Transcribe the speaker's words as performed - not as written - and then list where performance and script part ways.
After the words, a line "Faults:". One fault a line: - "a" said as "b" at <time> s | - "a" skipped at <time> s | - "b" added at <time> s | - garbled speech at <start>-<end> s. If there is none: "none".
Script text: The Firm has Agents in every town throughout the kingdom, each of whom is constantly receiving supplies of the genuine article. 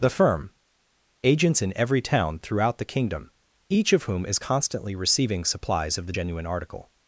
The Firm Agents in every town throughout the kingdom, each of whom is constantly receiving supplies of the genuine article.
Faults:
- "has" skipped at 0.5 s